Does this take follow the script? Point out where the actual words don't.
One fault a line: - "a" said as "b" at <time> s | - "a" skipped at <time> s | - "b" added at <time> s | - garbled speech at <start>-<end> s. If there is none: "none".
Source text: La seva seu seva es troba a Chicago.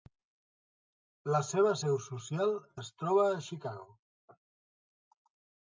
- "seva" said as "social" at 2.1 s